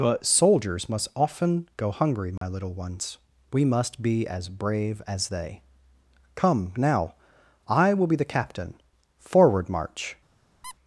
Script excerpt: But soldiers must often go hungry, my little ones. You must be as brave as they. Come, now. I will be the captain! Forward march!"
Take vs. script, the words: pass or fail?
fail